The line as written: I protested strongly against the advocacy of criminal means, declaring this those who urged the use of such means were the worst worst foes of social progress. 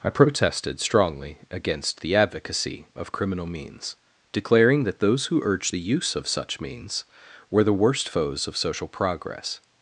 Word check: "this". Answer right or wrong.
wrong